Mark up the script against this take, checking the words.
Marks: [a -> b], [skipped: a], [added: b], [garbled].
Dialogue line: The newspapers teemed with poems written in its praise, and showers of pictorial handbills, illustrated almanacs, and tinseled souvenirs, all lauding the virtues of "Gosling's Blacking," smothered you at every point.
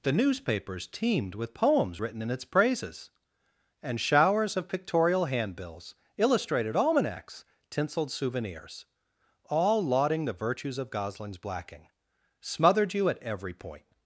The newspapers teemed with poems written in its [praise, -> praises] and showers of pictorial handbills, illustrated almanacs, [skipped: and] tinseled souvenirs, all lauding the virtues of "Gosling's Blacking," smothered you at every point.